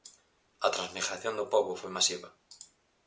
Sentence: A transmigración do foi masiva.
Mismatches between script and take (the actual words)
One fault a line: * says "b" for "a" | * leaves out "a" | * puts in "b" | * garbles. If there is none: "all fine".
* puts in "pobo"